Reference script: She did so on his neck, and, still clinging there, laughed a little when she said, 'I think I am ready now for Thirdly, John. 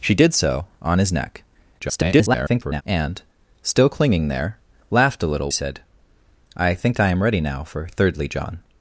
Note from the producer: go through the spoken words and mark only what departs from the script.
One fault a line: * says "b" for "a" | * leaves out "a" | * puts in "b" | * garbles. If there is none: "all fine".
* garbles
* leaves out "when she"